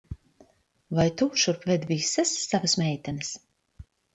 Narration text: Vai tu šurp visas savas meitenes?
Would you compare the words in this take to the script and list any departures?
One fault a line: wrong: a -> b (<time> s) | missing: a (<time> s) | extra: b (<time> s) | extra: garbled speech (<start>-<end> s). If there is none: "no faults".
extra: ved (1.7 s)